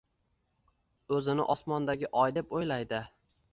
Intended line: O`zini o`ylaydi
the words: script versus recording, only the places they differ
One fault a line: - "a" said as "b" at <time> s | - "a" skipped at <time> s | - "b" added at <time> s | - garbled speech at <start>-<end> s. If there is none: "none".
- "osmondagi oy deb" added at 1.5 s